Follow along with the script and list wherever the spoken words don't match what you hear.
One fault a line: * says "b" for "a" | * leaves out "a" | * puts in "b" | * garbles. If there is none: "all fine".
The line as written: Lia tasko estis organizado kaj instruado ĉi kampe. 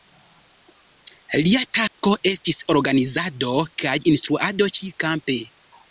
all fine